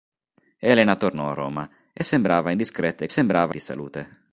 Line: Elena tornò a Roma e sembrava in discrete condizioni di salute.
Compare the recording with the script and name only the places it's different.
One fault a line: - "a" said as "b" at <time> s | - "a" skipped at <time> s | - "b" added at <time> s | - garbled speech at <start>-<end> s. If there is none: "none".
- "condizioni" said as "sembrava" at 3.1 s